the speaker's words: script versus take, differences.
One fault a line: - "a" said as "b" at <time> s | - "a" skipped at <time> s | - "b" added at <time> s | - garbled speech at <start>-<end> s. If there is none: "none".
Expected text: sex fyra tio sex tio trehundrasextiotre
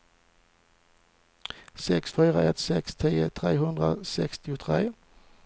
- "tio" said as "ett" at 2.4 s